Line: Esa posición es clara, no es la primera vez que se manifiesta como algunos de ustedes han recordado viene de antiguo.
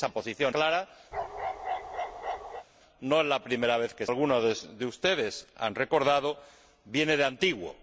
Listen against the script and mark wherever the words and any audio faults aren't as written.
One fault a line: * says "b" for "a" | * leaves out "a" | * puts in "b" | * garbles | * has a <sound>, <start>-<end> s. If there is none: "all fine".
* leaves out "es"
* has a bark, 1.1-2.7 s
* leaves out "se manifiesta como"